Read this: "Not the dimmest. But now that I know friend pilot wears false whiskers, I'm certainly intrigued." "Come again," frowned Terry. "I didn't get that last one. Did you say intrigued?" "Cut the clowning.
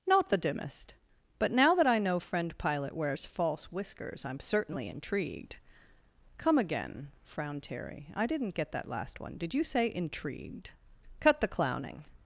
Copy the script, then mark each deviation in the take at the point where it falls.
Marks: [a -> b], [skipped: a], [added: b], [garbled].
"Not the dimmest. But now that I know friend pilot wears false whiskers, I'm certainly intrigued." "Come again," frowned Terry. "I didn't get that last one. Did you say intrigued?" "Cut the clowning.